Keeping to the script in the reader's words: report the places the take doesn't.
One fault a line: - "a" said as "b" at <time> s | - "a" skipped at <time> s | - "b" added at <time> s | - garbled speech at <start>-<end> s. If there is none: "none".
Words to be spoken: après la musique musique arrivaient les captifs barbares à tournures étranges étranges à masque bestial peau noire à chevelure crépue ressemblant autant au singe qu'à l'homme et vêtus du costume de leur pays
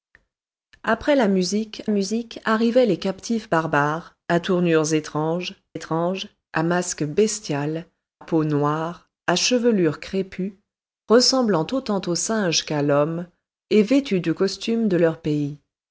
none